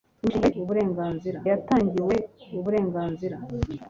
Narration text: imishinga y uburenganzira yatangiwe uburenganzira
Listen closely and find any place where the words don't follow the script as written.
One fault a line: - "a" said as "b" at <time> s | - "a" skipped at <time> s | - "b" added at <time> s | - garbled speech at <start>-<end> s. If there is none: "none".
none